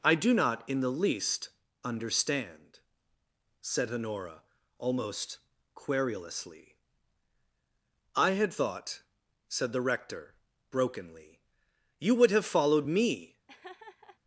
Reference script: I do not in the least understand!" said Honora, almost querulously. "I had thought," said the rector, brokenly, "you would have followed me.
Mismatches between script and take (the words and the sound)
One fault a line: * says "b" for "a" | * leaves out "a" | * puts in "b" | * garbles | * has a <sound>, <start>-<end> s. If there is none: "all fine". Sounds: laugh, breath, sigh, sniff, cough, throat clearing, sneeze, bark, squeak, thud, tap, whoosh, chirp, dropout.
* has a laugh, 13.5-14.2 s